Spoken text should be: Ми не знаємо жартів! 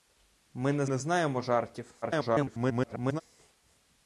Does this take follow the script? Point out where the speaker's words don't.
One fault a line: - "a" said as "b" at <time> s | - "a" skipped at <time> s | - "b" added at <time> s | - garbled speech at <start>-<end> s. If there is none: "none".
- "не" added at 0.8 s
- garbled speech at 2.0-3.2 s